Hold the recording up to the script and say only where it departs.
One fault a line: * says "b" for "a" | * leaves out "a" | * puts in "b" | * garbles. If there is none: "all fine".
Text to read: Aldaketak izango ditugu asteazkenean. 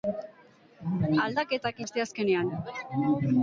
* leaves out "izango ditugu"